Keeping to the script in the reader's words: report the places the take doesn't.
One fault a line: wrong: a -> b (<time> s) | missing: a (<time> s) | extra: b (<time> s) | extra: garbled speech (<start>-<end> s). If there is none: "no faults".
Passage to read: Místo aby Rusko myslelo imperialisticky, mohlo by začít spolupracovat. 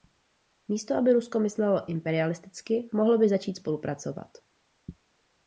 no faults